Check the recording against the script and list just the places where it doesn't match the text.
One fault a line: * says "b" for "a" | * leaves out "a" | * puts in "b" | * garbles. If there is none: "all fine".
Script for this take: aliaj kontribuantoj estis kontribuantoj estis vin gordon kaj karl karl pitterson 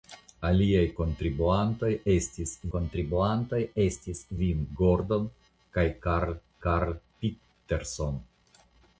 all fine